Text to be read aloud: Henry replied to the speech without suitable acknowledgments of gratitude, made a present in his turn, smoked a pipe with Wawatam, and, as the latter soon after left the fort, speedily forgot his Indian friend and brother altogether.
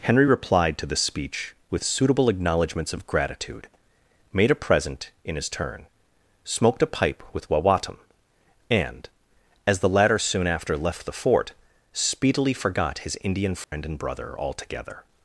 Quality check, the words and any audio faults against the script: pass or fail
fail